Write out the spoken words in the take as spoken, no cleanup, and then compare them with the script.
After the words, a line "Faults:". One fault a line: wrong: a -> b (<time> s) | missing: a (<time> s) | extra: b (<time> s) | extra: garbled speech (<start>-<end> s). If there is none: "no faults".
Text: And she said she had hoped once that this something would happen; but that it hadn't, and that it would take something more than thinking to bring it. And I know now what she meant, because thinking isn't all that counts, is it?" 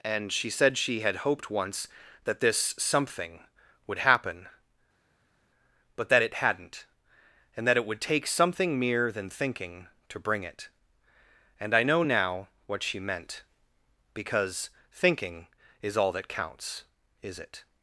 And she said she had hoped once that this something would happen; but that it hadn't, and that it would take something mere than thinking to bring it. And I know now what she meant, because thinking is all that counts, is it?"
Faults:
wrong: more -> mere (8.8 s)
wrong: isn't -> is (15.8 s)